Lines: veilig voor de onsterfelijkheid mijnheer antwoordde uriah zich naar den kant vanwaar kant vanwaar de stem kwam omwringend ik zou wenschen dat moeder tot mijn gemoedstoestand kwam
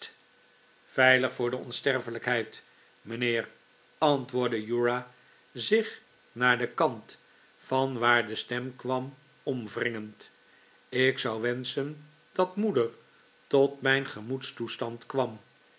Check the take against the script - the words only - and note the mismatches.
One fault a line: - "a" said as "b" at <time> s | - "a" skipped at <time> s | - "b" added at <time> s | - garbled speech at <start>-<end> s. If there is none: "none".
- "kant vanwaar" skipped at 8.3 s